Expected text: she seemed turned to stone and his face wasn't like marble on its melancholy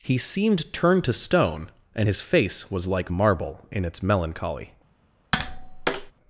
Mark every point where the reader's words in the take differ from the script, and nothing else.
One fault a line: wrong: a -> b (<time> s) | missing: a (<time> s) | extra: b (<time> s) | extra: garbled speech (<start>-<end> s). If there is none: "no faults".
wrong: she -> he (0.0 s)
wrong: wasn't -> was (2.7 s)
wrong: on -> in (3.7 s)